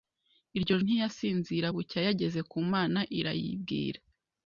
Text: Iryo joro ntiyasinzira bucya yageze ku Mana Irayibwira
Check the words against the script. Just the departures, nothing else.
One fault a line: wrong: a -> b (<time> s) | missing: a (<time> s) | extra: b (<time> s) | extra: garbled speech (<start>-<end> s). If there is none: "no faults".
missing: joro (0.8 s)